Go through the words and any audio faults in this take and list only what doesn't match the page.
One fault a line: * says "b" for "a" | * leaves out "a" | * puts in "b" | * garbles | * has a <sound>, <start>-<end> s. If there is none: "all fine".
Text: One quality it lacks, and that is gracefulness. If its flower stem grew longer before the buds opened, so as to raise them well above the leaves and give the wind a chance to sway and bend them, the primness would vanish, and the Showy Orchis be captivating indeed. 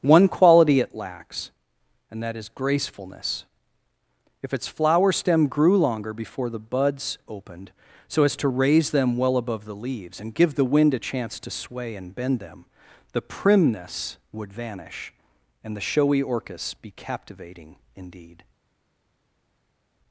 all fine